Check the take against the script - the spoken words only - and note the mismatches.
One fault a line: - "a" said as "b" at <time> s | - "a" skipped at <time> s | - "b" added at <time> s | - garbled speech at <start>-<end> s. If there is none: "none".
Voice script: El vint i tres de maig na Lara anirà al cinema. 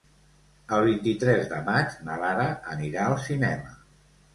none